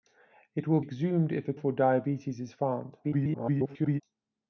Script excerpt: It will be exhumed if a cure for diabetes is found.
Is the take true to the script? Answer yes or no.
no